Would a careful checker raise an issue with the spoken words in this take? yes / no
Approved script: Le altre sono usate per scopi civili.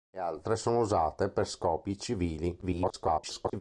yes